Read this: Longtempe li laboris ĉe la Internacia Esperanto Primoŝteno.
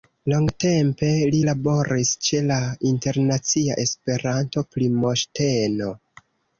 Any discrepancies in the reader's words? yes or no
no